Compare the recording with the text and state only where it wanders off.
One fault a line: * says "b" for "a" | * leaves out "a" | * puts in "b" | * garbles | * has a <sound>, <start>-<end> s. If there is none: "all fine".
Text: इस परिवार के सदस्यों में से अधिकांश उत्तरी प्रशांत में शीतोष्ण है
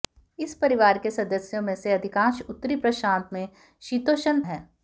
all fine